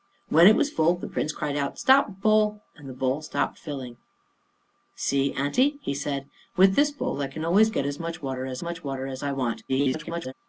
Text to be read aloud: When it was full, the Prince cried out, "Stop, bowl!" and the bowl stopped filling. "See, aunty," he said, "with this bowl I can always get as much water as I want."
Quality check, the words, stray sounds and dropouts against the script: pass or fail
fail